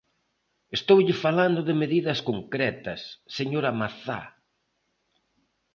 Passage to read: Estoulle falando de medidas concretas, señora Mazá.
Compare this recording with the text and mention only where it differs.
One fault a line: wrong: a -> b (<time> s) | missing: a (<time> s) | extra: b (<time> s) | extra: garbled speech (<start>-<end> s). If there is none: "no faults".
no faults